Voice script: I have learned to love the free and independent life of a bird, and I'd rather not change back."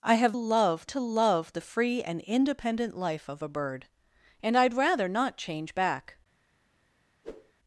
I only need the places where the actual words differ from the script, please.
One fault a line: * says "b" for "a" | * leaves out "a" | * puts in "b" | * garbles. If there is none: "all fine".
* says "love" for "learned"